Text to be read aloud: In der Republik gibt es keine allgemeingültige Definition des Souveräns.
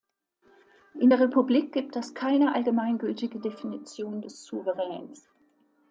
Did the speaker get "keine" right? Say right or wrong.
right